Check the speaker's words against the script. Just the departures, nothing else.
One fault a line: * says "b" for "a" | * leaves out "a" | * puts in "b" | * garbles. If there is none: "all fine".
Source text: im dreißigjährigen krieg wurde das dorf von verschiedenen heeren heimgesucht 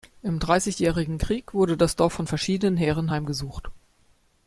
all fine